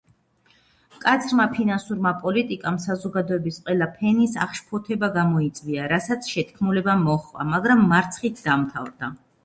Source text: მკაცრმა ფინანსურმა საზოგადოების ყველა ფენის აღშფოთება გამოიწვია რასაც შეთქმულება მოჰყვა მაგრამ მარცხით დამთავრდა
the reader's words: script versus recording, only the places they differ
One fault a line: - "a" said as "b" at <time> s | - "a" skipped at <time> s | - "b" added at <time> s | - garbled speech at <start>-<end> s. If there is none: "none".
- "პოლიტიკამ" added at 2.2 s